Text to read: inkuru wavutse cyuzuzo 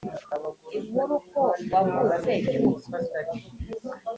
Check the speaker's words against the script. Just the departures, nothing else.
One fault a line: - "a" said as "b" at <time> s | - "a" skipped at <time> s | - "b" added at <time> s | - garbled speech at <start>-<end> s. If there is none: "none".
- "ko" added at 1.3 s